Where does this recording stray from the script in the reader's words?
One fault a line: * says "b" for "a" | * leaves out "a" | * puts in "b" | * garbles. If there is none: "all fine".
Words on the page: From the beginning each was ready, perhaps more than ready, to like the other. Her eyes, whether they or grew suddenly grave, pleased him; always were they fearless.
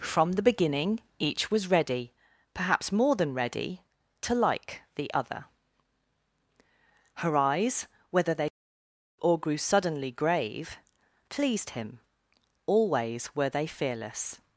all fine